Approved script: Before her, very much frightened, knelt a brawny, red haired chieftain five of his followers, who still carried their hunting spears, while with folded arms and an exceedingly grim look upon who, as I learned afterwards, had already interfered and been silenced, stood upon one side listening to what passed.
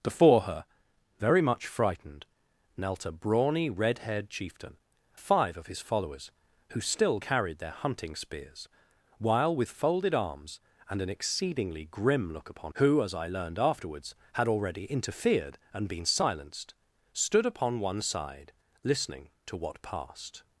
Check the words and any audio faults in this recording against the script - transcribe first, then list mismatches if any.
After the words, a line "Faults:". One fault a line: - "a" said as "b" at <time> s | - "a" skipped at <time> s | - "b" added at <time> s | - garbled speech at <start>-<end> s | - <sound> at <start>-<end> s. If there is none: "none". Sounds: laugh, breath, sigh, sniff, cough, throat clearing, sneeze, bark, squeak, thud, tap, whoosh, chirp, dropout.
Before her, very much frightened, knelt a brawny, red haired chieftain five of his followers, who still carried their hunting spears, while with folded arms and an exceedingly grim look upon who, as I learned afterwards, had already interfered and been silenced, stood upon one side listening to what passed.
Faults:
none